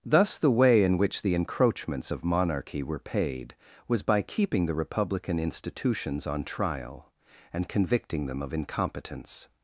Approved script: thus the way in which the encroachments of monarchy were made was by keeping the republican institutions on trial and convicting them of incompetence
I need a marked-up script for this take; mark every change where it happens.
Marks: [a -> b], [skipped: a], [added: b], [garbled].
thus the way in which the encroachments of monarchy were [made -> paid] was by keeping the republican institutions on trial and convicting them of incompetence